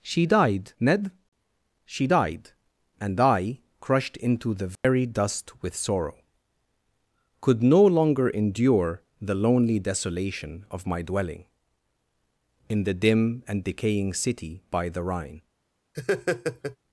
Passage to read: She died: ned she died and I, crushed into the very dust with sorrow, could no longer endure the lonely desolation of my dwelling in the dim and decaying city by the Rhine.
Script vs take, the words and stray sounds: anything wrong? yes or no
yes